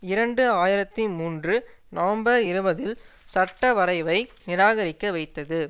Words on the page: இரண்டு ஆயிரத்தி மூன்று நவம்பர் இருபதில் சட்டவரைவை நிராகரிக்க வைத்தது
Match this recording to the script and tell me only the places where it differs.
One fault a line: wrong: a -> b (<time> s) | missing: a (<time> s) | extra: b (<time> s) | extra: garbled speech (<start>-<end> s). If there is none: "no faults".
no faults